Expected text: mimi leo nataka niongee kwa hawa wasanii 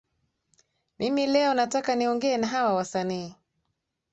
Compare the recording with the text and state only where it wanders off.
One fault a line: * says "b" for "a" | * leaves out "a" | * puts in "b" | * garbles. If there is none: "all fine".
* says "na" for "kwa"